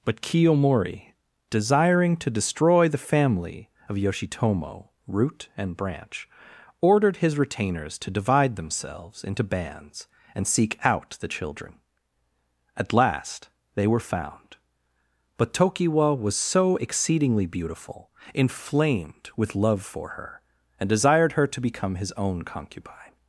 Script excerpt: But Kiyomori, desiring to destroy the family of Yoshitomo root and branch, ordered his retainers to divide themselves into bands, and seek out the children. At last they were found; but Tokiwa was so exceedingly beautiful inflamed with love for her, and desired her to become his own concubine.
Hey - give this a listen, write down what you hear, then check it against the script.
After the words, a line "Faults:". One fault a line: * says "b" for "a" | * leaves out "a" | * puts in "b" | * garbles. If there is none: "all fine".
But Kiyomori, desiring to destroy the family of Yoshitomo root and branch, ordered his retainers to divide themselves into bands, and seek out the children. At last they were found; but Tokiwa was so exceedingly beautiful inflamed with love for her, and desired her to become his own concubine.
Faults:
all fine